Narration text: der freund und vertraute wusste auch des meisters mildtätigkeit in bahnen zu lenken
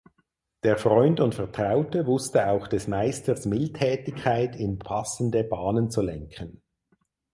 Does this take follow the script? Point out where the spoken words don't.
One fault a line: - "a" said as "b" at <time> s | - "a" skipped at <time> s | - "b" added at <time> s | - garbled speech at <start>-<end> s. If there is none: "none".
- "passende" added at 4.8 s